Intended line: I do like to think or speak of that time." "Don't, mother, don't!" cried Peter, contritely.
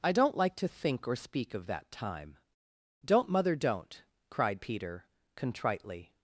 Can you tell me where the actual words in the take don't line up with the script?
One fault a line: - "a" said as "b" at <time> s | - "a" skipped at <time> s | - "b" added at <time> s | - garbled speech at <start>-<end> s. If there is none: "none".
- "do" said as "don't" at 0.1 s